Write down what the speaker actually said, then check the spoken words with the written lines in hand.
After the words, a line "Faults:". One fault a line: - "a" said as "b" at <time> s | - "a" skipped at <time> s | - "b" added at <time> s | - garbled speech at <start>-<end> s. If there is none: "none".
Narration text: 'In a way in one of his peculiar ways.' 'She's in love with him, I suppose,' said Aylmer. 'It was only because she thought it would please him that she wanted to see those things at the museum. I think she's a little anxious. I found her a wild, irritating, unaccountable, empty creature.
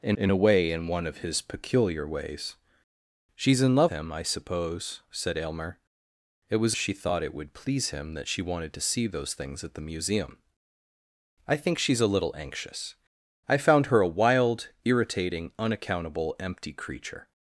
'In in a way in one of his peculiar ways.' 'She's in love him, I suppose,' said Aylmer. 'It was she thought it would please him that she wanted to see those things at the museum. I think she's a little anxious. I found her a wild, irritating, unaccountable, empty creature.
Faults:
- "in" added at 0.2 s
- "with" skipped at 3.9 s
- "only because" skipped at 6.8 s